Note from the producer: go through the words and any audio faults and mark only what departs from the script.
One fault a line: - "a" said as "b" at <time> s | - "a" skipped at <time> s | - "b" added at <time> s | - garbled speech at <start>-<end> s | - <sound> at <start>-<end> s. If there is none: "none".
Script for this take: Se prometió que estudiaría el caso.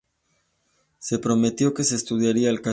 - "se" added at 1.8 s